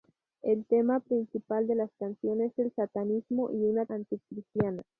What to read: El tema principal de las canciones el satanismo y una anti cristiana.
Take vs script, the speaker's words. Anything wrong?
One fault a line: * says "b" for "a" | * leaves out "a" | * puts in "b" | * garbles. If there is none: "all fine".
all fine